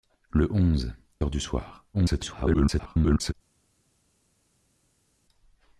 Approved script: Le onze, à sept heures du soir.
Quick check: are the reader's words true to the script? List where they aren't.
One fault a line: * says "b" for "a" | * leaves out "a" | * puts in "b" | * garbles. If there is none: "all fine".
* leaves out "à sept"
* garbles